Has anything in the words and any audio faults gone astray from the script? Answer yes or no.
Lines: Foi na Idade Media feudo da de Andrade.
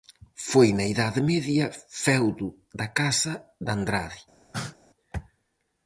yes